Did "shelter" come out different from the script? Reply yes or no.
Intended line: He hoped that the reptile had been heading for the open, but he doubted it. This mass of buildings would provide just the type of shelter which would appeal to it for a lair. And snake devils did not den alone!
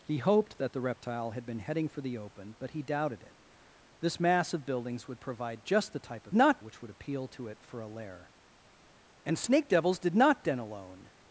yes